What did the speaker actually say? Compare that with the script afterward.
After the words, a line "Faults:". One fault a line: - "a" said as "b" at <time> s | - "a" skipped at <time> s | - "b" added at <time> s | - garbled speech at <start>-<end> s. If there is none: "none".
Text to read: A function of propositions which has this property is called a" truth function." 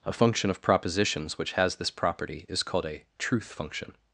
A function of propositions which has this property is called a" truth function."
Faults:
none